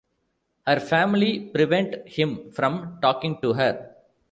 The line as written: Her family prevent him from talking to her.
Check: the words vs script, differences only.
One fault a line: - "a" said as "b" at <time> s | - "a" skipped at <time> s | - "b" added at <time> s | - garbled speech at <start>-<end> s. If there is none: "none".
none